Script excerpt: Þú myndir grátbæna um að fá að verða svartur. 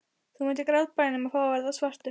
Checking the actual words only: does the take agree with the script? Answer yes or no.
yes